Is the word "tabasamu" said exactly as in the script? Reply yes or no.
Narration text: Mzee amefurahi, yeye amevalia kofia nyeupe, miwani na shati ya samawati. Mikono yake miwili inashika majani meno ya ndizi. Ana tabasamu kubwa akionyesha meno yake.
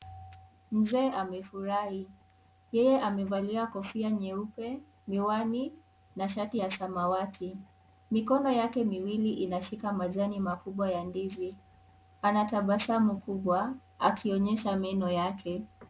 yes